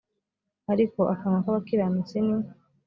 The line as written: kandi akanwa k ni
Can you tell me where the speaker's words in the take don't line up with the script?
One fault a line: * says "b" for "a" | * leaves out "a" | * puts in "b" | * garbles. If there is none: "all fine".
* says "ariko" for "kandi"
* puts in "abakiranutsi"